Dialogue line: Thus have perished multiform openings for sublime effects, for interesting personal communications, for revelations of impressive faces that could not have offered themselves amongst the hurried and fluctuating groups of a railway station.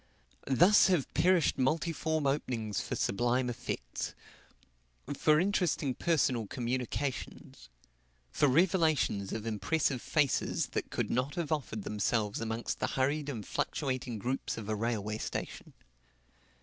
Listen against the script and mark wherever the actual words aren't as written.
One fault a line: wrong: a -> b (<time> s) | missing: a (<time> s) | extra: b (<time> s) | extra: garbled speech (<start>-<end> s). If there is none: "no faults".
no faults